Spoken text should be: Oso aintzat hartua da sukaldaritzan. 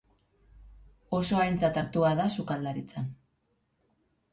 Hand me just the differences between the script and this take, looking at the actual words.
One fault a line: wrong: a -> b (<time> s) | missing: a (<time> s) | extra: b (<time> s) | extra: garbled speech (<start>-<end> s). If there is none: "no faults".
no faults